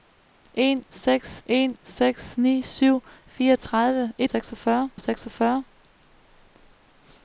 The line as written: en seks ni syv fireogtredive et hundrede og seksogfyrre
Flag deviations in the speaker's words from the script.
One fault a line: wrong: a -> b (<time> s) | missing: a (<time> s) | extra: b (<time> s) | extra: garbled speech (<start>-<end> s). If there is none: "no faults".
extra: en seks (1.4 s)
wrong: hundrede -> seksogfyrre (4.3 s)